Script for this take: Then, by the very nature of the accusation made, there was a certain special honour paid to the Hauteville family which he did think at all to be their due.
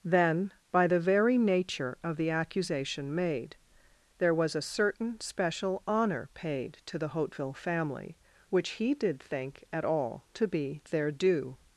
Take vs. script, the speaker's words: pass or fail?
pass